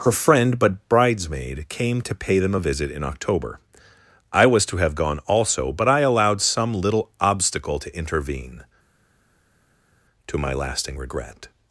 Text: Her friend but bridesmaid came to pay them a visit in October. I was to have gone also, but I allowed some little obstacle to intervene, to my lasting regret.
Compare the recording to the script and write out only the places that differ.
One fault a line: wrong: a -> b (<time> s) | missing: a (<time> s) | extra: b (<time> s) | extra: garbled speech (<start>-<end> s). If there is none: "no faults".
no faults